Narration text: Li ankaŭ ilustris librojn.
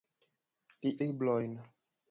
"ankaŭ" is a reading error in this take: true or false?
true